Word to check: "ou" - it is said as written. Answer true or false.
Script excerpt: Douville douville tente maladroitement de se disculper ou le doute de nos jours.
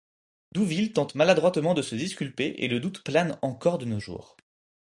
false